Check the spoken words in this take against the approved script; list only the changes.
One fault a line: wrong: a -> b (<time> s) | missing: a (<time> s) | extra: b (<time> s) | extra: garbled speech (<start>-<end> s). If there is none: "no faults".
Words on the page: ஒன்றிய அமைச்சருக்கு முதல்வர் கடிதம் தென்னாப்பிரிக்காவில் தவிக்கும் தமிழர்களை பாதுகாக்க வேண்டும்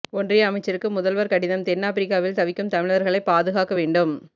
no faults